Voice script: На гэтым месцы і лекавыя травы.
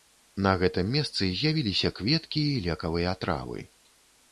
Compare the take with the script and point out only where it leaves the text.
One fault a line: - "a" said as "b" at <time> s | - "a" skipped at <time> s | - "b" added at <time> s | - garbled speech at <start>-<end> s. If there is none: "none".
- "з'явіліся кветкі" added at 1.4 s